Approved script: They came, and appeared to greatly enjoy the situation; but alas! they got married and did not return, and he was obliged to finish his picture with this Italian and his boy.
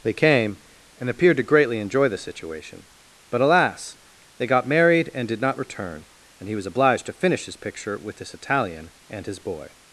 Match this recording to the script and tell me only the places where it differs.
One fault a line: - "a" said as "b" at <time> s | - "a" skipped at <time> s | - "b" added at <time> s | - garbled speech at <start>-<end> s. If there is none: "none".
none